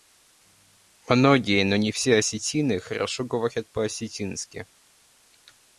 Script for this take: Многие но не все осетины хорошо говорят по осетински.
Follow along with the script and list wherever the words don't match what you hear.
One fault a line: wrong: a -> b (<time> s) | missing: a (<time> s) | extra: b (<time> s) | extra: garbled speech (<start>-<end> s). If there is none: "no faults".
no faults